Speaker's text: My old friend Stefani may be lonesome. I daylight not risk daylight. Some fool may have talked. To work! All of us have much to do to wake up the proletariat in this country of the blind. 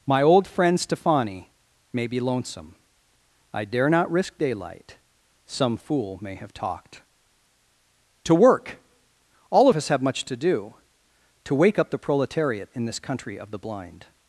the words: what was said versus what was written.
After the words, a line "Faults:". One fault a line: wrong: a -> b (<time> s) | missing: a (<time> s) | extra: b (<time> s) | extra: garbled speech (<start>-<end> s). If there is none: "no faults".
My old friend Stefani may be lonesome. I dare not risk daylight. Some fool may have talked. To work! All of us have much to do to wake up the proletariat in this country of the blind.
Faults:
wrong: daylight -> dare (3.6 s)